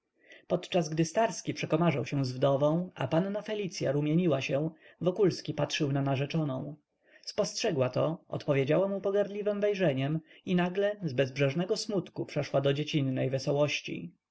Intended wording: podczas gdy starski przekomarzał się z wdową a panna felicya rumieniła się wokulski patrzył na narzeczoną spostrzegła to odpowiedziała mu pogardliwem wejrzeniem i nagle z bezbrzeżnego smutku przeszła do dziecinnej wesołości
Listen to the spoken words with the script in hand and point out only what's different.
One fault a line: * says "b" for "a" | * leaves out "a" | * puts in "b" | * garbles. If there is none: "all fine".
all fine